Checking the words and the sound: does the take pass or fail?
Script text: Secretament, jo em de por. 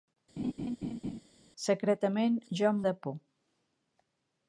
fail